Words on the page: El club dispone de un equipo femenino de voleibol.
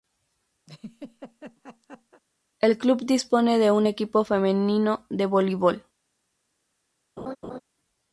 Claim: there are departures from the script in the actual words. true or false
false